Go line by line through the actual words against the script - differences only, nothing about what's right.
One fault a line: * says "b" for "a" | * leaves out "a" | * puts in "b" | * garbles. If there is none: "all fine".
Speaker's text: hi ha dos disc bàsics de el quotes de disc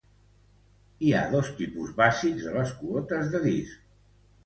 * says "tipus" for "disc"
* says "les" for "el"